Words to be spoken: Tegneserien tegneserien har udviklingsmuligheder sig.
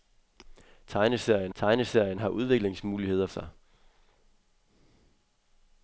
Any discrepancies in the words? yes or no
no